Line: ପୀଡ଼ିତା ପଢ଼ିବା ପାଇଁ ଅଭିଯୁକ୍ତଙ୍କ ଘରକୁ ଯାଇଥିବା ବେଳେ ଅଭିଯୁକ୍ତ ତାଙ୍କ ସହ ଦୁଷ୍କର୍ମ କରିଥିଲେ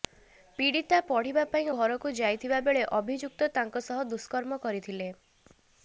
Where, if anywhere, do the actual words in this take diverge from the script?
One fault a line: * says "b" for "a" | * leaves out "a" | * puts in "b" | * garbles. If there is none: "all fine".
* leaves out "ଅଭିଯୁକ୍ତଙ୍କ"